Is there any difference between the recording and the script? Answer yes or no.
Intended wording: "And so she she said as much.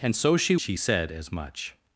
no